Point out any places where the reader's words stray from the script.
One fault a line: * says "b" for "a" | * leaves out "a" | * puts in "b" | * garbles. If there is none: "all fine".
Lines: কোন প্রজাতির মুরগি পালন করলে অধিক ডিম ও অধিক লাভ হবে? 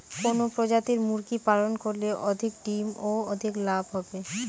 all fine